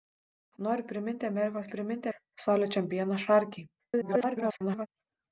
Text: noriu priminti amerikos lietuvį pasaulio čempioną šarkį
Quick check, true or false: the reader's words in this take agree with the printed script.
false